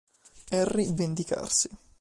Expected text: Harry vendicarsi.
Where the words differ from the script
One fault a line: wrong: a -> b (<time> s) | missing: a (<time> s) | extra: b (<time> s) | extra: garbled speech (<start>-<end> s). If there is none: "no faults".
no faults